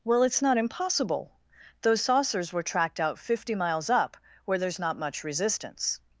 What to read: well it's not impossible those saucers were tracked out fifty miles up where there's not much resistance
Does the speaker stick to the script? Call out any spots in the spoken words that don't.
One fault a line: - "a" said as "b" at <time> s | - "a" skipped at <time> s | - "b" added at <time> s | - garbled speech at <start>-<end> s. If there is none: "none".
none